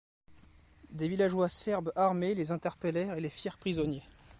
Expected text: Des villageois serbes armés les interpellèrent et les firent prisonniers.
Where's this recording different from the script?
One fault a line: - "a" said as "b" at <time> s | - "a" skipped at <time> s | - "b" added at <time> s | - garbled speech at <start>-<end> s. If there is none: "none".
none